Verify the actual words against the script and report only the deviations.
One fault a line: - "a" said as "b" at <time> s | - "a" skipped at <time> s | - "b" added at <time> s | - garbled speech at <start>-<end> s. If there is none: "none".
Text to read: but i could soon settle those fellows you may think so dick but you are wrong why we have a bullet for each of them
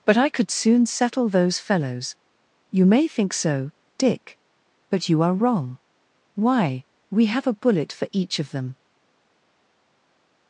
none